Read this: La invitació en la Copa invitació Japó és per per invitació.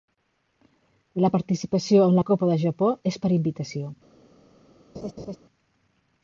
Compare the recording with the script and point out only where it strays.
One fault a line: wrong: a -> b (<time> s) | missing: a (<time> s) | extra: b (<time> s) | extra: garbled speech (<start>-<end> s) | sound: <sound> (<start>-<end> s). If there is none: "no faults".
wrong: invitació -> participació (1.3 s)
wrong: invitació -> del (2.5 s)
missing: per (3.3 s)
sound: laugh (4.9-5.4 s)